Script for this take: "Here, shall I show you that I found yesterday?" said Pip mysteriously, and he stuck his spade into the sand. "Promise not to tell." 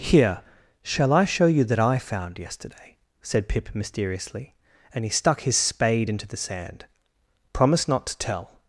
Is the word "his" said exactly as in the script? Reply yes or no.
yes